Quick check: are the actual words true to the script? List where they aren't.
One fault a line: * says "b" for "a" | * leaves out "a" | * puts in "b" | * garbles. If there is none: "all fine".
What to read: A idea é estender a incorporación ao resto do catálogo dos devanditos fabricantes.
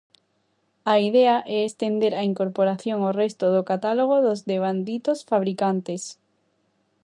all fine